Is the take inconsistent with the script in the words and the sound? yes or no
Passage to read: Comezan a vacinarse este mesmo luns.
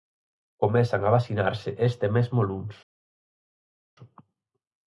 no